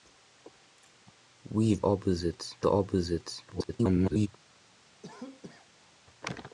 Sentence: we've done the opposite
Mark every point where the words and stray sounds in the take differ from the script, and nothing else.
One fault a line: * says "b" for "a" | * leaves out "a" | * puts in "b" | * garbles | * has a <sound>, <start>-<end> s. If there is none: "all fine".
* says "opposite" for "done"
* garbles
* has a cough, 5.0-6.0 s